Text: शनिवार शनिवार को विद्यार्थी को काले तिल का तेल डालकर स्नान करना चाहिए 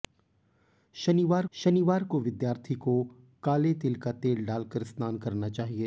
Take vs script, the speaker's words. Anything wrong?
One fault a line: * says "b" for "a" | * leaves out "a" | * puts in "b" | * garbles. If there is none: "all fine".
all fine